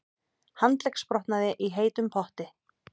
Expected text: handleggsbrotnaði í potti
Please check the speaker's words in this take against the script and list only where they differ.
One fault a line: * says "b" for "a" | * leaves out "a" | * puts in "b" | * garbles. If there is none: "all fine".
* puts in "heitum"